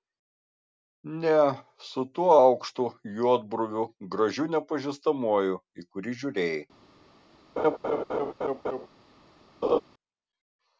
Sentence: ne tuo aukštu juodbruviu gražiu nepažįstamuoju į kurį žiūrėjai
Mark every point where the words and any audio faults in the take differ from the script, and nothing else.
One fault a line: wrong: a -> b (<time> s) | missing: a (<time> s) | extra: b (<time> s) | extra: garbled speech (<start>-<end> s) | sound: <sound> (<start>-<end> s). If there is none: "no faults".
extra: su (1.9 s)
sound: laugh (7.6-8.9 s)
sound: laugh (9.6-9.8 s)